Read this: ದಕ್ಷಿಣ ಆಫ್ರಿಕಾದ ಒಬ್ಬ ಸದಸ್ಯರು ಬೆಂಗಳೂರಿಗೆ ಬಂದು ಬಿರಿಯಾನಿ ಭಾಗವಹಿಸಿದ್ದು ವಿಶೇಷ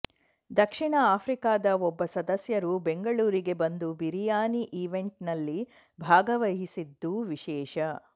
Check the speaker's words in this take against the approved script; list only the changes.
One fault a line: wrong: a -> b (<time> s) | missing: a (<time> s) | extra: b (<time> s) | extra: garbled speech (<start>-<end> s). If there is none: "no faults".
extra: ಈವೆಂಟ್ನಲ್ಲಿ (4.8 s)